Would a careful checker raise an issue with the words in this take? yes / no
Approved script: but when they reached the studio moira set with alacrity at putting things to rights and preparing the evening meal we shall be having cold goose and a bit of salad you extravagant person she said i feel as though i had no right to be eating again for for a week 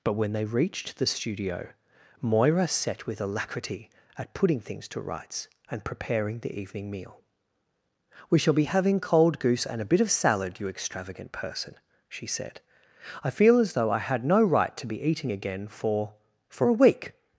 no